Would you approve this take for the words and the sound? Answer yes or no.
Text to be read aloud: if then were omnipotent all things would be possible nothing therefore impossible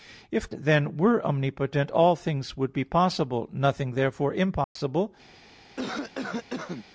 no